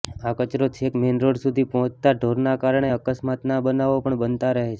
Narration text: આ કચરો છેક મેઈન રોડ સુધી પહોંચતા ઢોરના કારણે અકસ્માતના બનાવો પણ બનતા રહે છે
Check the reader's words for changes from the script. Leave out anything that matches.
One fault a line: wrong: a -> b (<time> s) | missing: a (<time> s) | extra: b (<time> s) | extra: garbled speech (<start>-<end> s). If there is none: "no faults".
no faults